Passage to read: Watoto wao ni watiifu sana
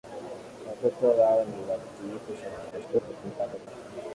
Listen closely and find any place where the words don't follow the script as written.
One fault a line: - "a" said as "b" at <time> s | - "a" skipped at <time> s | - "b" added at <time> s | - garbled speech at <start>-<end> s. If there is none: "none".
- garbled speech at 2.7-3.7 s